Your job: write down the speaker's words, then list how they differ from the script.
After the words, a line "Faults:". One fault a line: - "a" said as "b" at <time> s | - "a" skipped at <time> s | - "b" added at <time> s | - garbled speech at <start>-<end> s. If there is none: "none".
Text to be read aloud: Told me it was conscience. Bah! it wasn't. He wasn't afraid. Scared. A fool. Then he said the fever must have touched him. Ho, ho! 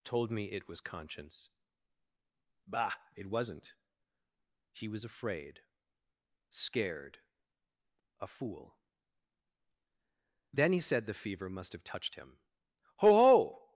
Told me it was conscience. Bah! it wasn't. He was afraid. Scared. A fool. Then he said the fever must have touched him. Ho, ho!
Faults:
- "wasn't" said as "was" at 4.9 s